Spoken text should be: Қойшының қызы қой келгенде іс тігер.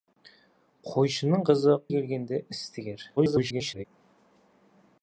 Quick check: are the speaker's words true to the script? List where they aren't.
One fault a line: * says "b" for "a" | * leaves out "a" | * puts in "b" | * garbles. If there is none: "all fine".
* leaves out "қой"
* garbles